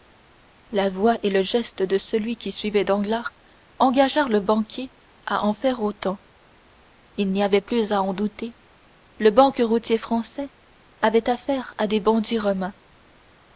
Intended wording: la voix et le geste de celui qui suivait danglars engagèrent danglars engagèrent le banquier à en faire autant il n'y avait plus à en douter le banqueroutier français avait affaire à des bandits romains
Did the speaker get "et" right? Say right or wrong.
right